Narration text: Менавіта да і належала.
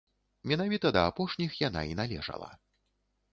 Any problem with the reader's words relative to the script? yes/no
yes